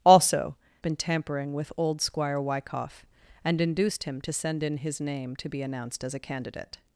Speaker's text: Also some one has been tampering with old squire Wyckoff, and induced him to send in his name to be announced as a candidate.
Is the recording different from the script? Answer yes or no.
yes